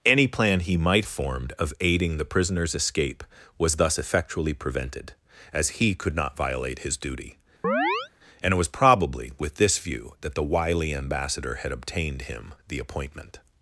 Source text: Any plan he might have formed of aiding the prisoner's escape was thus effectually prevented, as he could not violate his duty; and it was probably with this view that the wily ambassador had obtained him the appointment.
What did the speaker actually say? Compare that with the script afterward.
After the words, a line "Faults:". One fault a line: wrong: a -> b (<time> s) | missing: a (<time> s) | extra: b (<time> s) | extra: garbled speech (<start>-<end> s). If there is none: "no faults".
Any plan he might formed of aiding the prisoner's escape was thus effectually prevented, as he could not violate his duty; and it was probably with this view that the wily ambassador had obtained him the appointment.
Faults:
missing: have (1.1 s)